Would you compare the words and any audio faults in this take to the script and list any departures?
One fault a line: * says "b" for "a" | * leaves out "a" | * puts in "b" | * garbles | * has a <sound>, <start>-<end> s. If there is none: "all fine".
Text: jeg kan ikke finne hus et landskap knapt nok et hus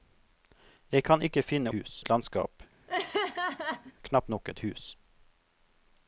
* has a laugh, 2.9-3.9 s